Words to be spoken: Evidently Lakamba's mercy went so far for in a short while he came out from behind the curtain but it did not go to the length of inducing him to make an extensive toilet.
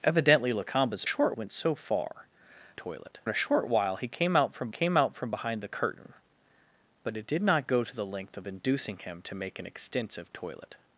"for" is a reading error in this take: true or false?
true